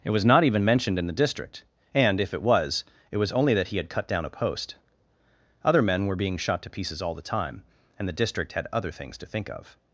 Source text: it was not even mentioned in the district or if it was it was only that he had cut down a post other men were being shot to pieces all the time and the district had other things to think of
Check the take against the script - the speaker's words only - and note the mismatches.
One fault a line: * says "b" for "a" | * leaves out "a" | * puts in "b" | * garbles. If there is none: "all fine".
* says "and" for "or"